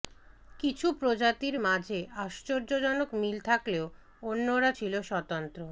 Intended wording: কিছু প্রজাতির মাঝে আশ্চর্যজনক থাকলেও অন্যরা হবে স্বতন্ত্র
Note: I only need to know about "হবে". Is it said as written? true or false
false